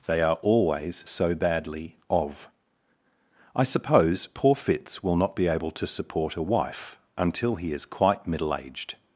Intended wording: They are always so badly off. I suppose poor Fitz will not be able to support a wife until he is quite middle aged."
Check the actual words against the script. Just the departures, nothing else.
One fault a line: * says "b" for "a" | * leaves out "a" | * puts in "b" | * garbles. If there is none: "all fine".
* says "of" for "off"